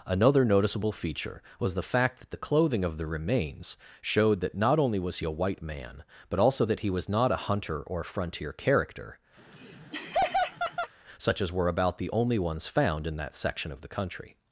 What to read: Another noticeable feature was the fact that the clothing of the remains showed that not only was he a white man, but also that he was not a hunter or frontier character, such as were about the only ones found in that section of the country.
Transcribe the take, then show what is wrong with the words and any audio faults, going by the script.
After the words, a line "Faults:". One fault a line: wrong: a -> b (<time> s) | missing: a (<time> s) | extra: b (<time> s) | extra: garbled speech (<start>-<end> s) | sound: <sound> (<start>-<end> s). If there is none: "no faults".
Another noticeable feature was the fact that the clothing of the remains showed that not only was he a white man, but also that he was not a hunter or frontier character, such as were about the only ones found in that section of the country.
Faults:
sound: laugh (9.4-10.9 s)